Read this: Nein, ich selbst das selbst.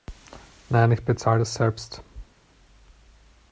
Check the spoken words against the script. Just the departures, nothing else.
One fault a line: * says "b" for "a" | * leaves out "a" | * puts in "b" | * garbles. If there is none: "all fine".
* says "bezahle" for "selbst"